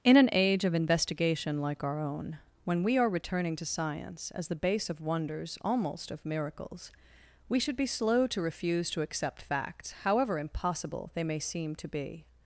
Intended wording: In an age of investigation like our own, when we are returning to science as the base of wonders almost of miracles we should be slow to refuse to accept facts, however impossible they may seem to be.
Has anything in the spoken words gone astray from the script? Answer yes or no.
no